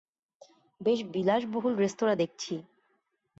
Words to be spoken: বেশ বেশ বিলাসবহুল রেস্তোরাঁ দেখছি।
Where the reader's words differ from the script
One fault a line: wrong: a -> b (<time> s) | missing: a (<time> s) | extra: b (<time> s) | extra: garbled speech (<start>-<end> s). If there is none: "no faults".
missing: বেশ (1.0 s)